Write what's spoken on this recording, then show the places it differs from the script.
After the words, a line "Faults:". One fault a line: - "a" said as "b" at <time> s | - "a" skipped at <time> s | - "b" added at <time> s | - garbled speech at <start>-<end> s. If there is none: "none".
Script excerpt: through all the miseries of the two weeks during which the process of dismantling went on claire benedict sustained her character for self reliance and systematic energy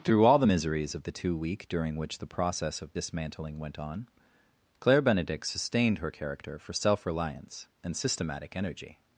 through all the miseries of the two week during which the process of dismantling went on claire benedict sustained her character for self reliance and systematic energy
Faults:
- "weeks" said as "week" at 1.4 s